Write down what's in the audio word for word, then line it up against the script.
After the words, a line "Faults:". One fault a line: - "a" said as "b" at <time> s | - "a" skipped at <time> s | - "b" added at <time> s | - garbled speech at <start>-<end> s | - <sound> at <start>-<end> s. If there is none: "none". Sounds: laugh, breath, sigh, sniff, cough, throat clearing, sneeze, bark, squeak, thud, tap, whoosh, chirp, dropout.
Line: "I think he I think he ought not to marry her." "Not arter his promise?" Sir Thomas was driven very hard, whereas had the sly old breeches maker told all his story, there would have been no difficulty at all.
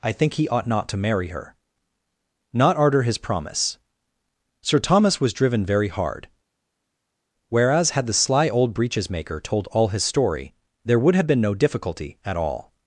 "I think he ought not to marry her." "Not arter his promise?" Sir Thomas was driven very hard, whereas had the sly old breeches maker told all his story, there would have been no difficulty at all.
Faults:
- "I think he" skipped at 0.5 s